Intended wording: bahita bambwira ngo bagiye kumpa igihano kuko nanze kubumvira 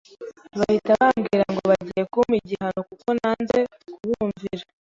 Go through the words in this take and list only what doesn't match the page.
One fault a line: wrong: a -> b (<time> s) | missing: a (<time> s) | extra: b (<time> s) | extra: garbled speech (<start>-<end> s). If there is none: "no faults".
no faults